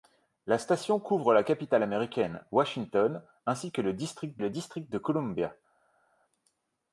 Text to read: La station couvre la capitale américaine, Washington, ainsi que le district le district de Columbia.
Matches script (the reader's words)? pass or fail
pass